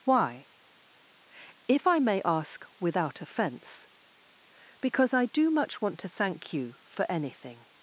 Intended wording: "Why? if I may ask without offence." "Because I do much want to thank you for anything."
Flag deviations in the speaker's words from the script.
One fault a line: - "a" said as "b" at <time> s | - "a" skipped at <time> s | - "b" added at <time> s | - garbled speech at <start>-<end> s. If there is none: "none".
none